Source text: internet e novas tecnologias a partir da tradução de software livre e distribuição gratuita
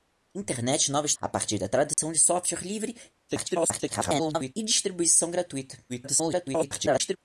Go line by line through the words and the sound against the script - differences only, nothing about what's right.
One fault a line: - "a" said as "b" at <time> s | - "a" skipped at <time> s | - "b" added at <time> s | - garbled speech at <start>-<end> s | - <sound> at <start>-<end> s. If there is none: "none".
- "tecnologias" skipped at 1.1 s
- dropout at 1.9-2.0 s
- garbled speech at 3.3-4.5 s
- garbled speech at 5.9-7.2 s